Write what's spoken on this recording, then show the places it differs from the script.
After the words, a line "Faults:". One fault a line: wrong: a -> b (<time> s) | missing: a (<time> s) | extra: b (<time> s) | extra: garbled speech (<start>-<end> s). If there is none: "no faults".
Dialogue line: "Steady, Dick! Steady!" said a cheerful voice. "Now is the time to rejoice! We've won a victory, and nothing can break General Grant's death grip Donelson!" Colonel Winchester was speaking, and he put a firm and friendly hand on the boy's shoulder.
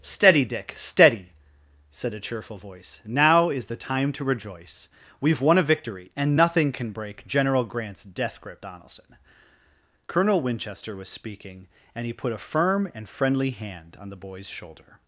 "Steady, Dick! Steady!" said a cheerful voice. "Now is the time to rejoice! We've won a victory, and nothing can break General Grant's death grip Donelson!" Colonel Winchester was speaking, and he put a firm and friendly hand on the boy's shoulder.
Faults:
no faults